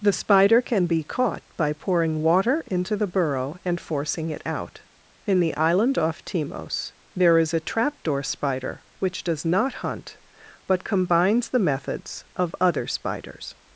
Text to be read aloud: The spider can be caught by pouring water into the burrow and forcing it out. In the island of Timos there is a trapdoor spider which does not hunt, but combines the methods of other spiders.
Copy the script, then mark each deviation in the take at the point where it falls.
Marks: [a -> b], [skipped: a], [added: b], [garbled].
The spider can be caught by pouring water into the burrow and forcing it out. In the island [of -> off] Timos there is a trapdoor spider which does not hunt, but combines the methods of other spiders.